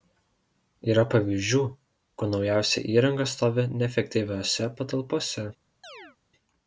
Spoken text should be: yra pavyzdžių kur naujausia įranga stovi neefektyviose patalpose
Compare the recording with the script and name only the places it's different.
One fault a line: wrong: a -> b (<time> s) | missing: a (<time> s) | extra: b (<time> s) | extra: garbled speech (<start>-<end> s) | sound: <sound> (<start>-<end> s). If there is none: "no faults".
sound: chirp (5.8-6.2 s)